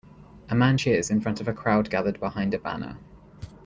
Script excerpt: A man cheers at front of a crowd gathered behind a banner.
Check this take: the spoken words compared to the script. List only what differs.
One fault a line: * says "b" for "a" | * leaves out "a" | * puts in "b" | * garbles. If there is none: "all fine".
* says "in" for "at"